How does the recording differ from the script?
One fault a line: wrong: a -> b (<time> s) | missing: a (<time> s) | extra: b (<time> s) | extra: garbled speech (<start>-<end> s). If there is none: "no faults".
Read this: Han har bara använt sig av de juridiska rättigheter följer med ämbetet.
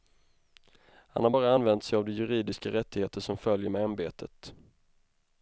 extra: som (3.2 s)